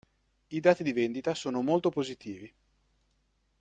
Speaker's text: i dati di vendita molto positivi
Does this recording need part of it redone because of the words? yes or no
yes